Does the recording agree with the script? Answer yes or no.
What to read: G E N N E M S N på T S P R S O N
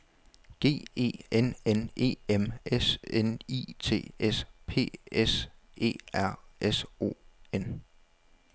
no